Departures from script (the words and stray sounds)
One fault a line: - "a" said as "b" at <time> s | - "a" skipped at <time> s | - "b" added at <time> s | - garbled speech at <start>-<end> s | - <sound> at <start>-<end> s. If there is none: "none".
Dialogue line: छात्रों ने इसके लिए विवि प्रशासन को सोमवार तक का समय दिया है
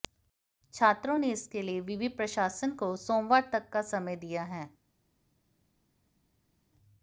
none